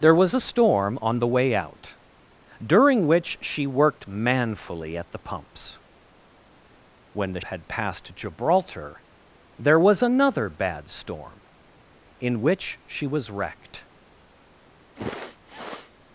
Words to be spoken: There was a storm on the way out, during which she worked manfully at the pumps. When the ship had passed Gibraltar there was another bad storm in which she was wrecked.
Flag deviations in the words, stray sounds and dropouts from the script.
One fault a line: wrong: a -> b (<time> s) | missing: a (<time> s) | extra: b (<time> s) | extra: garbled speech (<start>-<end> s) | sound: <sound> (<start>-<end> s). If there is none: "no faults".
missing: ship (7.5 s)
sound: sniff (14.9-15.9 s)